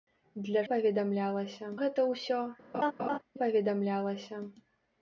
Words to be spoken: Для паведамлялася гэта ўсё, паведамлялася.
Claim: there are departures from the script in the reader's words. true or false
false